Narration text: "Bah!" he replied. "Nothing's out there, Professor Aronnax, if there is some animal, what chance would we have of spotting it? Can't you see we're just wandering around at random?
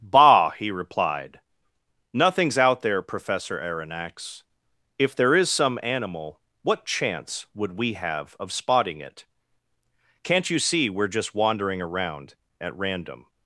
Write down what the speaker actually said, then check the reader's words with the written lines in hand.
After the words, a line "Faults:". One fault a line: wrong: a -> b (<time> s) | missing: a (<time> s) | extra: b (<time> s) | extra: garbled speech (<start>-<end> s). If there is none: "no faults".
"Bah!" he replied. "Nothing's out there, Professor Aronnax, if there is some animal, what chance would we have of spotting it? Can't you see we're just wandering around at random?
Faults:
no faults